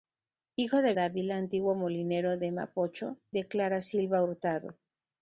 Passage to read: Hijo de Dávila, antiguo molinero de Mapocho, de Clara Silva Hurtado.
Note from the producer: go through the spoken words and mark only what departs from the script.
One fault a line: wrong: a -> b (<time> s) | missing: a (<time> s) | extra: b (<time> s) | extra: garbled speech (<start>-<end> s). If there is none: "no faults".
no faults